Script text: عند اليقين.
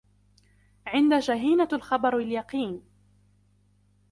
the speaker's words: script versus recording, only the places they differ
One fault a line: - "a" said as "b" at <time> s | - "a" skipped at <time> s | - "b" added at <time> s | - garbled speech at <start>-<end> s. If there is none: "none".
- "جهينة الخبر" added at 1.1 s